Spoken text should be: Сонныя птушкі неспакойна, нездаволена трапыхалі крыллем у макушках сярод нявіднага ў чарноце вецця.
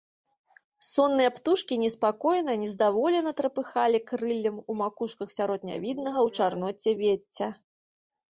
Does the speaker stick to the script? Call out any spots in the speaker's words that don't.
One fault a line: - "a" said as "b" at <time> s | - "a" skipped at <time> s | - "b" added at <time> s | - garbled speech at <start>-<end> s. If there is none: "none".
none